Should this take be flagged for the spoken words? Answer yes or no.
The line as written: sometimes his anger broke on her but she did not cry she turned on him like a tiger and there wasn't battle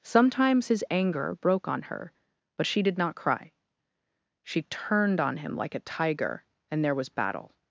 yes